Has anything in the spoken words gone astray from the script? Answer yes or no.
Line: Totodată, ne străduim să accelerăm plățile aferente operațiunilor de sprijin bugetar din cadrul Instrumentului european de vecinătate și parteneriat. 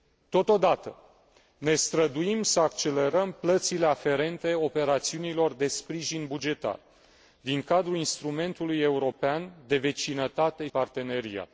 yes